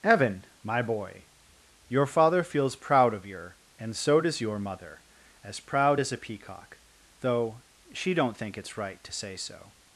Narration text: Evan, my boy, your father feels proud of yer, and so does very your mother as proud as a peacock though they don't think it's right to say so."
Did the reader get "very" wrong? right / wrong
wrong